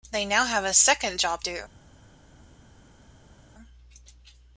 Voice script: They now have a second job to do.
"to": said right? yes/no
no